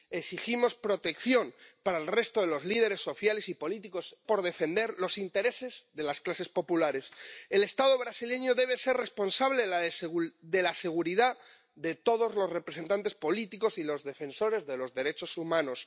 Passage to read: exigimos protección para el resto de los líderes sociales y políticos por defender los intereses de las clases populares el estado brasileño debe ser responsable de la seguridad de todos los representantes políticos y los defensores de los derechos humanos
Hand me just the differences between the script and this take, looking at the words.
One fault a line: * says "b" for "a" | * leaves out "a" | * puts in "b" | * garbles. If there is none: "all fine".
all fine